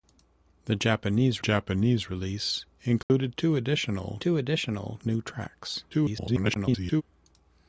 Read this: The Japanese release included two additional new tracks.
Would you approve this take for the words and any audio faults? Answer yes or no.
no